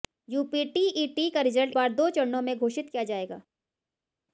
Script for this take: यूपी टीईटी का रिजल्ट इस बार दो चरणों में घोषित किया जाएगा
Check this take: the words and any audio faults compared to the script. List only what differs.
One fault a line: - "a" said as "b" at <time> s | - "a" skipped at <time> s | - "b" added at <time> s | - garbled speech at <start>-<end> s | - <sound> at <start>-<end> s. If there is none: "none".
- "इस" skipped at 1.7 s